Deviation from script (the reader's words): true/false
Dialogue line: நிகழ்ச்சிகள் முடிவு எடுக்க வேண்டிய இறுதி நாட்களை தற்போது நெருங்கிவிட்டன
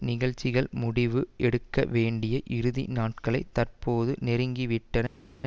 false